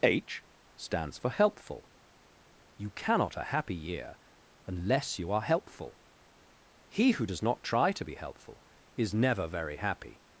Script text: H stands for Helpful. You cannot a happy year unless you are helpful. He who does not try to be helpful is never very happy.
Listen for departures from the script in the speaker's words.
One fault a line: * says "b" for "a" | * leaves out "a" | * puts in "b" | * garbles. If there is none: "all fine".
all fine